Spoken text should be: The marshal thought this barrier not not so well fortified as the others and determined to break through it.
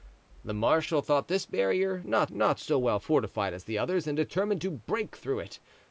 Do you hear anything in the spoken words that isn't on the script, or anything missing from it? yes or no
no